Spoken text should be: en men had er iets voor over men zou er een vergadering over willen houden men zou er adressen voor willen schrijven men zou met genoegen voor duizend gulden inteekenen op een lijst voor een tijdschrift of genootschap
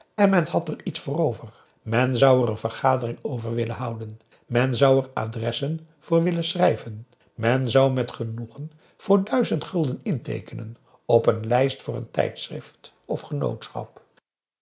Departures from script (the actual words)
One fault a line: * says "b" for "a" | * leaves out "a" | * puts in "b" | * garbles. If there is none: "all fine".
all fine